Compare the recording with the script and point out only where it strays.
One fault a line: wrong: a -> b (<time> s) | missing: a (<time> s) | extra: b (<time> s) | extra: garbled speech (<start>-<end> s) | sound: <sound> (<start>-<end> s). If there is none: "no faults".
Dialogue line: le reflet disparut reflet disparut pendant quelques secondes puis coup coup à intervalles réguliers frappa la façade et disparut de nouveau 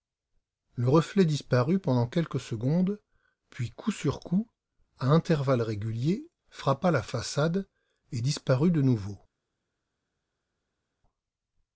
missing: reflet disparut (1.8 s)
extra: sur (3.9 s)